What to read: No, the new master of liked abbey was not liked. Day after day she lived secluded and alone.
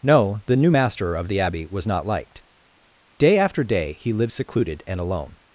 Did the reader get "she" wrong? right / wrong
wrong